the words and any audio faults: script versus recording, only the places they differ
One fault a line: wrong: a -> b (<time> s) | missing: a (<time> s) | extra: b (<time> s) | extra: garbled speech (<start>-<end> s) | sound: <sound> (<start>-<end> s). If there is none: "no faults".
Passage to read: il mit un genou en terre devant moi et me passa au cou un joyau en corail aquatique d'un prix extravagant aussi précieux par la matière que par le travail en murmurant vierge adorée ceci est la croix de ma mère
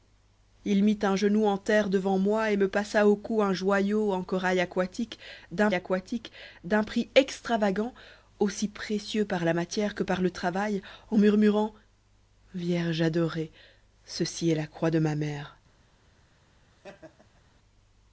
extra: aquatique d'un (5.7 s)
sound: laugh (16.7-17.4 s)